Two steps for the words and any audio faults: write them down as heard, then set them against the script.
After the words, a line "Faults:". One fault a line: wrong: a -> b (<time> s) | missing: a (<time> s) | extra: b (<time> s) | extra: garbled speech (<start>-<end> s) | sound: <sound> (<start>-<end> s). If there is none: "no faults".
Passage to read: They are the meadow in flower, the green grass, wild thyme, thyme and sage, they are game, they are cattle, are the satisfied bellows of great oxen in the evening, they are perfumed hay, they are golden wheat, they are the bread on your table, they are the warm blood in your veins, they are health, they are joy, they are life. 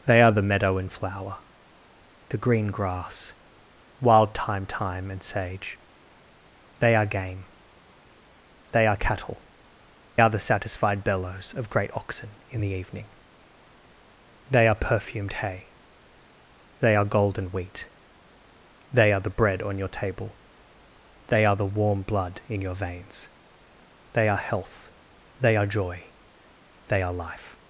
They are the meadow in flower, the green grass, wild thyme, thyme and sage, they are game, they are cattle, are the satisfied bellows of great oxen in the evening, they are perfumed hay, they are golden wheat, they are the bread on your table, they are the warm blood in your veins, they are health, they are joy, they are life.
Faults:
no faults